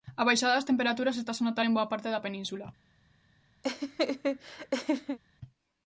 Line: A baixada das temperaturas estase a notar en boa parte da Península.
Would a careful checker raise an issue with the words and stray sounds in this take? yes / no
yes